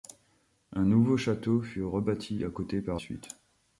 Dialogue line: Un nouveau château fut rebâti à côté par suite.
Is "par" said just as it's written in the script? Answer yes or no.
yes